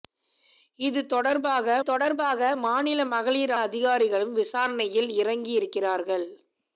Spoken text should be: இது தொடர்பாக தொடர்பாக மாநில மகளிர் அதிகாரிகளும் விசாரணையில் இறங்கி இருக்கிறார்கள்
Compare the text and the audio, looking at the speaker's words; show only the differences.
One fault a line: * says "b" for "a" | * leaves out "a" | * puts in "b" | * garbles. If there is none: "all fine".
all fine